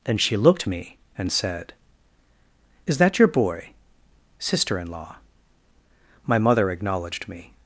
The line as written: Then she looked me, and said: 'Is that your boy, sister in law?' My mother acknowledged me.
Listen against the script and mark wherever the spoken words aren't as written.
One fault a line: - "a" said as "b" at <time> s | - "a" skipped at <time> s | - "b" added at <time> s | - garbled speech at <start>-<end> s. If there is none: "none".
none